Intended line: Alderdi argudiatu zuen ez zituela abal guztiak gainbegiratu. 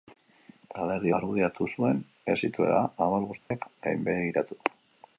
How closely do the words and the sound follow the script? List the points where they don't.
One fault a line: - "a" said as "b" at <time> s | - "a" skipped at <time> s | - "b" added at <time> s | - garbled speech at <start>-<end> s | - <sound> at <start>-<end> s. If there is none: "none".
- dropout at 3.4-3.5 s